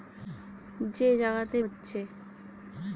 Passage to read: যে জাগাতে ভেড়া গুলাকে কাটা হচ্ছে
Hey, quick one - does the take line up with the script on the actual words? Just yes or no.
no